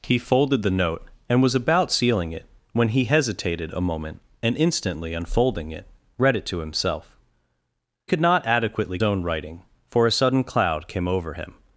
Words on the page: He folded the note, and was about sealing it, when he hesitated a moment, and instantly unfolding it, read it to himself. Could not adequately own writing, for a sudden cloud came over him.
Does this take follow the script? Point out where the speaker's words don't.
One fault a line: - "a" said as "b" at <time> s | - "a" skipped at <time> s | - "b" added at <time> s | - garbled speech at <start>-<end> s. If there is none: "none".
none